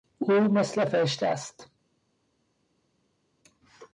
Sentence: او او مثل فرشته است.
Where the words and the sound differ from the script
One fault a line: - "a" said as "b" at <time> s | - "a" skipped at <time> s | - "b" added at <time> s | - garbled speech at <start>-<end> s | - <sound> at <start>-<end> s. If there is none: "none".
- "او" skipped at 0.3 s